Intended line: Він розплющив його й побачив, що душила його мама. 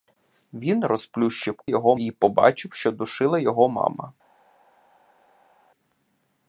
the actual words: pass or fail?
pass